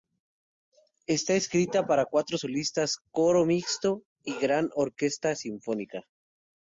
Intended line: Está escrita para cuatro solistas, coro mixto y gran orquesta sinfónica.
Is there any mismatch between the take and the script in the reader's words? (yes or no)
no